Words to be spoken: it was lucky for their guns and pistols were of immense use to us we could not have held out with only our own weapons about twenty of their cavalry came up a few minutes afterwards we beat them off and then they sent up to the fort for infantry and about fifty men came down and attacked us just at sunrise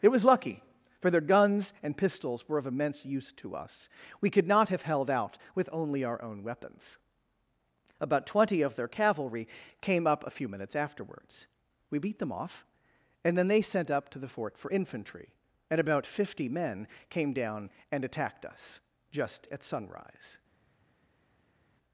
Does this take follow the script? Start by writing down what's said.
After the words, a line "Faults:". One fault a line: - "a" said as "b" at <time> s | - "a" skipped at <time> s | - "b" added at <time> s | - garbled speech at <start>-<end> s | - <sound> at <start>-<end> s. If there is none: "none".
it was lucky for their guns and pistols were of immense use to us we could not have held out with only our own weapons about twenty of their cavalry came up a few minutes afterwards we beat them off and then they sent up to the fort for infantry and about fifty men came down and attacked us just at sunrise
Faults:
none